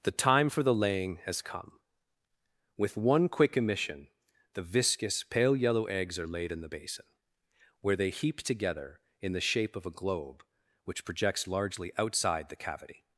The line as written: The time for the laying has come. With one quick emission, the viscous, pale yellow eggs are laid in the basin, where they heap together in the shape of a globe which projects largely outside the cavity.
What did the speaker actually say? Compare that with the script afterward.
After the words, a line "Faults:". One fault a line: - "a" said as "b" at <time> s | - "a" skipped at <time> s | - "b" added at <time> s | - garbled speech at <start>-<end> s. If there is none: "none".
The time for the laying has come. With one quick emission, the viscous, pale yellow eggs are laid in the basin, where they heap together in the shape of a globe which projects largely outside the cavity.
Faults:
none